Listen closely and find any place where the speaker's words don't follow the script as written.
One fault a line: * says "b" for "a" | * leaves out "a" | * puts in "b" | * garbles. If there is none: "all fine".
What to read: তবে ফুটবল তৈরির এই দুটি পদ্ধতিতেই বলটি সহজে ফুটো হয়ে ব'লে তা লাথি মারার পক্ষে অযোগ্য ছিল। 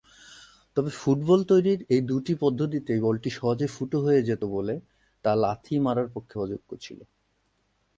* puts in "যেত"